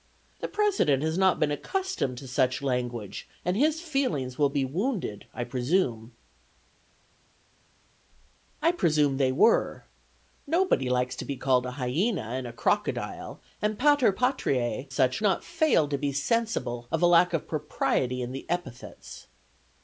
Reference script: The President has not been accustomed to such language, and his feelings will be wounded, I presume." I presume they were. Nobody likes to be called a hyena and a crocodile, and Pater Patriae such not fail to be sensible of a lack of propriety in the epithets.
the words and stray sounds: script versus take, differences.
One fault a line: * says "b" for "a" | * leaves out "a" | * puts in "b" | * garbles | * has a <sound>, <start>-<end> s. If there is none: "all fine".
all fine